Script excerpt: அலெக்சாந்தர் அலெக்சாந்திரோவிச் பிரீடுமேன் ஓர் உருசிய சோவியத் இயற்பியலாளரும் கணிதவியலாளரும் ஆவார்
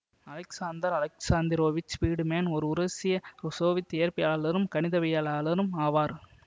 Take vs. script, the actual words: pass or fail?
pass